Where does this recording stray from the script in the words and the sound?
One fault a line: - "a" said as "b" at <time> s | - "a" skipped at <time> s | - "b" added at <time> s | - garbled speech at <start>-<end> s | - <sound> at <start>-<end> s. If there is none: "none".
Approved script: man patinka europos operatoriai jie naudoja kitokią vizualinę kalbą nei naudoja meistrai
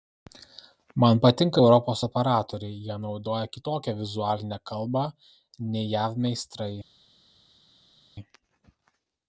- "naudoja" said as "jav" at 6.0 s